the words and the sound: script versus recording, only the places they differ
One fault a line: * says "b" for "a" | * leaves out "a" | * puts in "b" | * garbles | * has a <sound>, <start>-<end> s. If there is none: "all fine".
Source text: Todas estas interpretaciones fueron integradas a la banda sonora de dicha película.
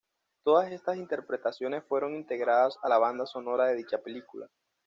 all fine